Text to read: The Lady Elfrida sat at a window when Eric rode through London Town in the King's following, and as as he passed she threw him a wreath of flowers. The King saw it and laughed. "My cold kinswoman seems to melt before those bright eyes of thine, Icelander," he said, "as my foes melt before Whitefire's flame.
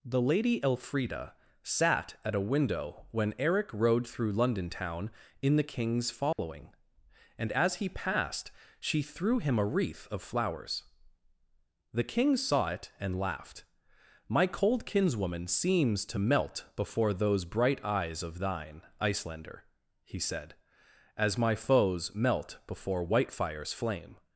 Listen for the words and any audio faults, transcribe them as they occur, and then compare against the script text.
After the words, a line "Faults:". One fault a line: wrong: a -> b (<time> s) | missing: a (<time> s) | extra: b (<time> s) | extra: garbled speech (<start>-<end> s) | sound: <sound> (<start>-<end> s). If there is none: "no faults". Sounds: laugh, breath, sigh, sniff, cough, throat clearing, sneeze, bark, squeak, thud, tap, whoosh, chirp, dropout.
The Lady Elfrida sat at a window when Eric rode through London Town in the King's following, and as he passed she threw him a wreath of flowers. The King saw it and laughed. "My cold kinswoman seems to melt before those bright eyes of thine, Icelander," he said, "as my foes melt before Whitefire's flame.
Faults:
sound: dropout (6.3-6.4 s)
missing: as (7.8 s)